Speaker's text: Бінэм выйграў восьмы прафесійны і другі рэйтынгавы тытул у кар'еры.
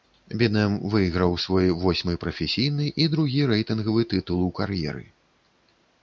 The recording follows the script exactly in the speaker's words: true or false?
false